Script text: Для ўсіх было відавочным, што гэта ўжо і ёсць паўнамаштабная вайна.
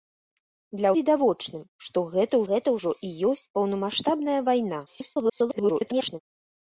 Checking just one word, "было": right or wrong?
wrong